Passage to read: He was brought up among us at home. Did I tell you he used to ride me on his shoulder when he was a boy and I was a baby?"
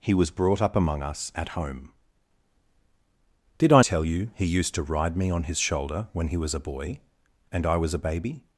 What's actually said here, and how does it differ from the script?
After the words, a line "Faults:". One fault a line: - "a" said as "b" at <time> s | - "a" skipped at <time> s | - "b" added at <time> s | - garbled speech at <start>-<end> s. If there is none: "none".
He was brought up among us at home. Did I tell you he used to ride me on his shoulder when he was a boy and I was a baby?"
Faults:
none